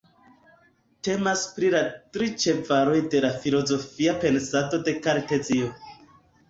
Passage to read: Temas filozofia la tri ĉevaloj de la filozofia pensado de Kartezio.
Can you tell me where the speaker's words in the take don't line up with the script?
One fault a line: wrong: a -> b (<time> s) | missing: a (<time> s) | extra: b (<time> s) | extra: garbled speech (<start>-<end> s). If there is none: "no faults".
wrong: filozofia -> pri (1.6 s)